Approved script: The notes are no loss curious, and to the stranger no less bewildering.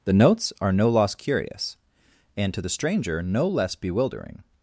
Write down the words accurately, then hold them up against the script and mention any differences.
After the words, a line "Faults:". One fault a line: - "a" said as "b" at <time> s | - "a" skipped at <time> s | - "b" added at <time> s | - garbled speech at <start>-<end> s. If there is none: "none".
The notes are no loss curious, and to the stranger no less bewildering.
Faults:
none